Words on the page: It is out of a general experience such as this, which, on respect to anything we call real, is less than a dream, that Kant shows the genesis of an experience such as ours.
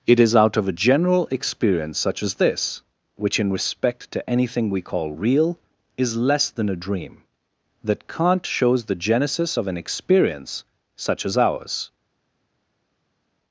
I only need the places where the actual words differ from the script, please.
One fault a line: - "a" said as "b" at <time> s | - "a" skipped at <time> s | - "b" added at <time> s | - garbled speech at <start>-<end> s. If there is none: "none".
- "on" said as "in" at 3.4 s